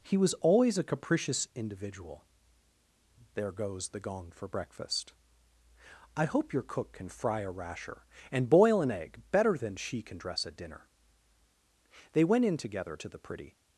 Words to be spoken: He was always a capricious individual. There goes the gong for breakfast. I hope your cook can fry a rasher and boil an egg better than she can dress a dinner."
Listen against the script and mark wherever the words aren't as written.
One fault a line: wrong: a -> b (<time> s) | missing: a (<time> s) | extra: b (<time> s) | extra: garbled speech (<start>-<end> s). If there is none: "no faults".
extra: They went in together to the pretty (12.1 s)